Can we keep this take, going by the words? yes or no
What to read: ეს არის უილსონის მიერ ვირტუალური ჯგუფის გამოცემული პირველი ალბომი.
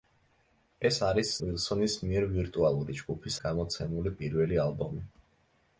yes